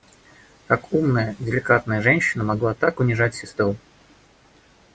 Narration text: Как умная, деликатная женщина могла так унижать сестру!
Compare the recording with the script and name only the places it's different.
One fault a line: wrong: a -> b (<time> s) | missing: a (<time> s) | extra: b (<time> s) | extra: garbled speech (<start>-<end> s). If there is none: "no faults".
no faults